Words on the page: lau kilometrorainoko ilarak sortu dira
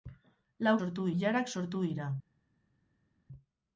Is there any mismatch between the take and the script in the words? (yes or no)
yes